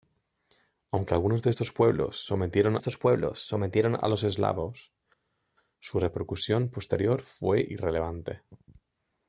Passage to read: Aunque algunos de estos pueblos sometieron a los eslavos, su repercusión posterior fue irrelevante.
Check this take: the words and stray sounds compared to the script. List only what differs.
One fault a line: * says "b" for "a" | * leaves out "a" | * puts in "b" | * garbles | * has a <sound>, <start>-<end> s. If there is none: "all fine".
* puts in "estos pueblos sometieron"